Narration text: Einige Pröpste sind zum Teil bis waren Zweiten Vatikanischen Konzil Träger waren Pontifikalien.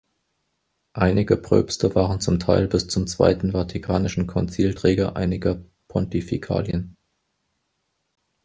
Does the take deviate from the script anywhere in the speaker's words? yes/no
yes